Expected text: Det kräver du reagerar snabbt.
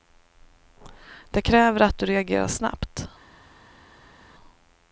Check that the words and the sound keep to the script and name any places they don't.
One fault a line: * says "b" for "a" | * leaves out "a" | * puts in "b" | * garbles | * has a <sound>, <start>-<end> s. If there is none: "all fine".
* puts in "att"